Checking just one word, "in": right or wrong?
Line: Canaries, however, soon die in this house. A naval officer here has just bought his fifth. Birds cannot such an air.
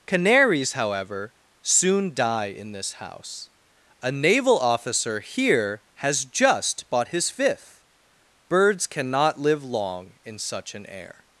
right